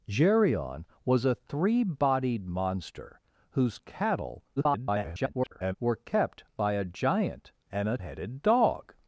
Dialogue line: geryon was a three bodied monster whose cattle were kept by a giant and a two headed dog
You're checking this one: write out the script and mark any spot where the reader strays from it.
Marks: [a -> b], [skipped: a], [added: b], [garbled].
geryon was a three bodied monster whose cattle [garbled] were kept by a giant and a [skipped: two] headed dog